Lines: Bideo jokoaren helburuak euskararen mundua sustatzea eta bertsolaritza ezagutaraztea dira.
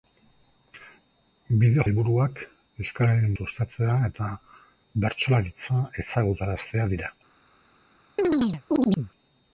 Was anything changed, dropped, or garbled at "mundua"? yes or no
yes